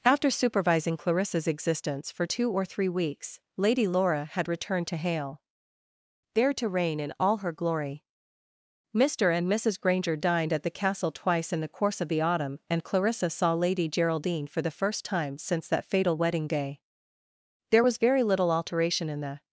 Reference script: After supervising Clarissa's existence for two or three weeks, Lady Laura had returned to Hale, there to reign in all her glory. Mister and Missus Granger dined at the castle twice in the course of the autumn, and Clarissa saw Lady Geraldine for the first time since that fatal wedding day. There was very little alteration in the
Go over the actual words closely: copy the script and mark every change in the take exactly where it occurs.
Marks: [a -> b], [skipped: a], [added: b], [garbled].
After supervising Clarissa's existence for two or three weeks, Lady Laura had returned to Hale, there to reign in all her glory. Mister and Missus Granger dined at the castle twice in the course of the autumn, and Clarissa saw Lady Geraldine for the first time since that fatal wedding day. There was very little alteration in the